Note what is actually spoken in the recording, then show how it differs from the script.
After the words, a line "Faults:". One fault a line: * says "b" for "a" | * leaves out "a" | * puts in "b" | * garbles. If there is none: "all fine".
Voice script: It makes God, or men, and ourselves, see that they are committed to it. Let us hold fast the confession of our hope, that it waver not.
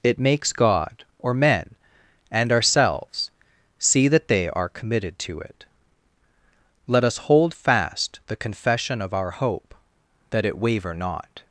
It makes God, or men, and ourselves, see that they are committed to it. Let us hold fast the confession of our hope, that it waver not.
Faults:
all fine